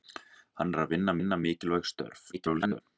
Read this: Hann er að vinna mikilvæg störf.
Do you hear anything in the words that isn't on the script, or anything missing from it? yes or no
yes